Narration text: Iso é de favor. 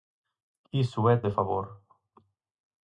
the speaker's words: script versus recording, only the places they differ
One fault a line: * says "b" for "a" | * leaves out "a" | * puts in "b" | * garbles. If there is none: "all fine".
all fine